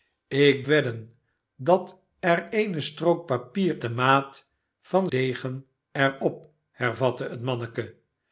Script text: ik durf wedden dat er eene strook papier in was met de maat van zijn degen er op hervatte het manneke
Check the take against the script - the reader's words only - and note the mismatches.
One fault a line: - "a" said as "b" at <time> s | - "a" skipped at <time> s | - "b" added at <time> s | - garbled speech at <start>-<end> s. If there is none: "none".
- "durf" skipped at 0.7 s
- "in was met" skipped at 3.8 s
- "zijn" skipped at 5.1 s